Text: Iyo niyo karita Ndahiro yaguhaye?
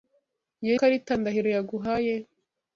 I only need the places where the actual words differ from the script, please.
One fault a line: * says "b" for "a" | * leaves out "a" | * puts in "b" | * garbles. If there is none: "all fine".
* leaves out "niyo"